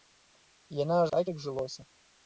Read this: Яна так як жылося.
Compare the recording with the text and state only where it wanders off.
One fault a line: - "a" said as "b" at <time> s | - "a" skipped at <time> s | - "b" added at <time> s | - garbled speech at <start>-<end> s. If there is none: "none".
none